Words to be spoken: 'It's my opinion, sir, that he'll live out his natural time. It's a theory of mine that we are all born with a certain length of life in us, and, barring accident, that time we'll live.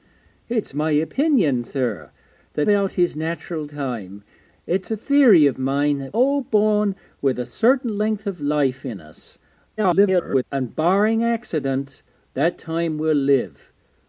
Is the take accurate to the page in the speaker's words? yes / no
no